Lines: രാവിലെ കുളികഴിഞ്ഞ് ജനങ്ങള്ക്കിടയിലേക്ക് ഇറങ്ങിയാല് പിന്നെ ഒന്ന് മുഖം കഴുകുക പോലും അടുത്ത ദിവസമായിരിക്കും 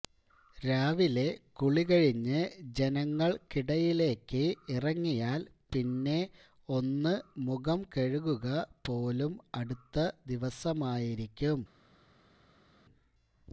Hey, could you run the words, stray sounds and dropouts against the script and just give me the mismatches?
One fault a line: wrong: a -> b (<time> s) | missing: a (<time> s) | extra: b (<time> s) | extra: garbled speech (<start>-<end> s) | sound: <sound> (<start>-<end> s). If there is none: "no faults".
no faults